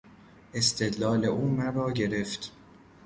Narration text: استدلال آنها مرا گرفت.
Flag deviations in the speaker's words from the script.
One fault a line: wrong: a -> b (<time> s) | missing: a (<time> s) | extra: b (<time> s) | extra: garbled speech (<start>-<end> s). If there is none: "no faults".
wrong: آنها -> او (1.2 s)